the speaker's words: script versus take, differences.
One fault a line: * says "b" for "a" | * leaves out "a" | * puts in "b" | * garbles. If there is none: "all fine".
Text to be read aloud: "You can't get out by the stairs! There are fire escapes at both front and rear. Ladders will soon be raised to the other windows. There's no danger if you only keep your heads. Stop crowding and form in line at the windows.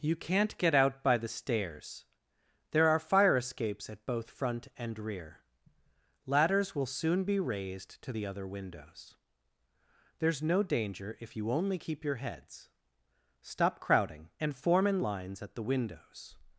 * says "lines" for "line"